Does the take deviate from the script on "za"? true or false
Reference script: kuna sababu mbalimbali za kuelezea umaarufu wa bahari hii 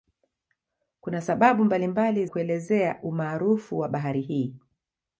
true